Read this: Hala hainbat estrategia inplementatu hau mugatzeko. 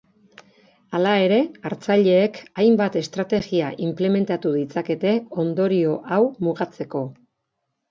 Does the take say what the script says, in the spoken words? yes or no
no